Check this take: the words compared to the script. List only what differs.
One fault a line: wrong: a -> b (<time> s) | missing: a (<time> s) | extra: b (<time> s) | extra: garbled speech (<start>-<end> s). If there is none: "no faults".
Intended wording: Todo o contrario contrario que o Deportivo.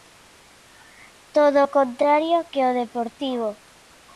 missing: contrario (2.4 s)